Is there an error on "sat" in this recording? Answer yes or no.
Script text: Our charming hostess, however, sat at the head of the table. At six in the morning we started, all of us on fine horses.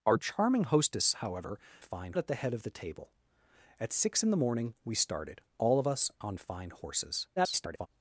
yes